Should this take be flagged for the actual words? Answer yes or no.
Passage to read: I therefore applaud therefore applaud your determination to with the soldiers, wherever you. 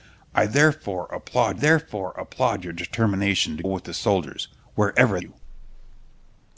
no